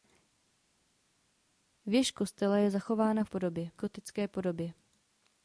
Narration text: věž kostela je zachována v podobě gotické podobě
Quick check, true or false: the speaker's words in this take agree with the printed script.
true